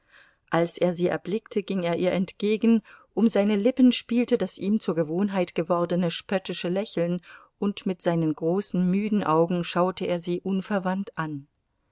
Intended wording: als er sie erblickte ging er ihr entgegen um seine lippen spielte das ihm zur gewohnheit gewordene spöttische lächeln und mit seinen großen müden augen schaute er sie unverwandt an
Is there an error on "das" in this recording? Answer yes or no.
no